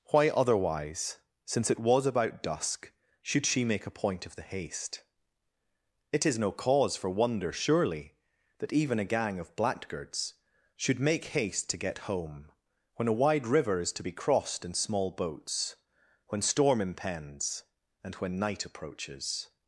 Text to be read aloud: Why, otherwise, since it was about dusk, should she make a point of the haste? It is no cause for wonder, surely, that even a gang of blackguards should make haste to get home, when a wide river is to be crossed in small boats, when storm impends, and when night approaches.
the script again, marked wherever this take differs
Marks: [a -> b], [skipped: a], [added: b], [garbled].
Why, otherwise, since it was about dusk, should she make a point of the haste? It is no cause for wonder, surely, that even a gang of blackguards should make haste to get home, when a wide river is to be crossed in small boats, when storm impends, and when night approaches.